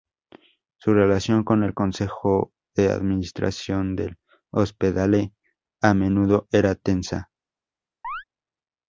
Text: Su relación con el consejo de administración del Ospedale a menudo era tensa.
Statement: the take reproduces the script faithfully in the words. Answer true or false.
true